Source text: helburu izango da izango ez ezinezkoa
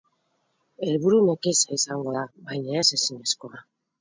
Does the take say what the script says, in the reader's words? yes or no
no